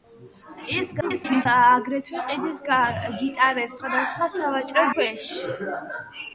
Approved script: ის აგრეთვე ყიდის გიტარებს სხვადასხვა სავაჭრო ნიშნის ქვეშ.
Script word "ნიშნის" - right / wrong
wrong